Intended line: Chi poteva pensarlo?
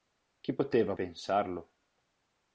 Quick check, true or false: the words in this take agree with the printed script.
true